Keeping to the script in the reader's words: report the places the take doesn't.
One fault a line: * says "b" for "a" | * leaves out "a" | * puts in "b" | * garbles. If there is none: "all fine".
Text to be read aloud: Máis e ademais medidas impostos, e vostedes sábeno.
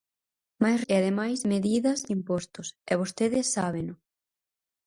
all fine